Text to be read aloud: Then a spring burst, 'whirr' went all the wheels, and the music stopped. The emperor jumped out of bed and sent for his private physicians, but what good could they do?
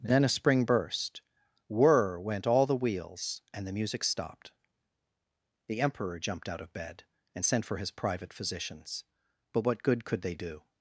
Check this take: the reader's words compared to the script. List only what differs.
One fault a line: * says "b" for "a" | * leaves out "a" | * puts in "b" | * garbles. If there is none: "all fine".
all fine